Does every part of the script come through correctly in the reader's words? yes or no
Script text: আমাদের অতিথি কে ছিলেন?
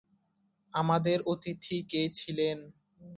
yes